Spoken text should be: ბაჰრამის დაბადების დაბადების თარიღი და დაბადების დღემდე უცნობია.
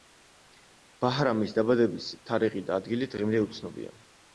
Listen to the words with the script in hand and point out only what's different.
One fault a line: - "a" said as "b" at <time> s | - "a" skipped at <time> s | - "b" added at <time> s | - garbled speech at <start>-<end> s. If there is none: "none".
- "დაბადების" skipped at 2.1 s
- "დაბადების" said as "ადგილი" at 2.8 s